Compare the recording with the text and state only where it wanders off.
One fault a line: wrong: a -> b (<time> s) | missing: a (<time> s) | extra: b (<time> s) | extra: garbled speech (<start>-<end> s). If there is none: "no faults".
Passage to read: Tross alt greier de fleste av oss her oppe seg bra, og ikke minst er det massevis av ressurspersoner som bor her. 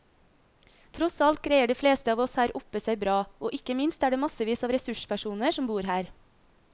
no faults